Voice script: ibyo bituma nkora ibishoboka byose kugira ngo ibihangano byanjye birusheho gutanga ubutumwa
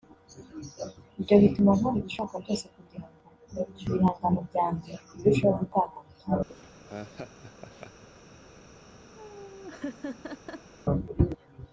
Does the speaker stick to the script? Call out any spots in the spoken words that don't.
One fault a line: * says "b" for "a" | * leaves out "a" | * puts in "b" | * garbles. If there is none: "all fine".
all fine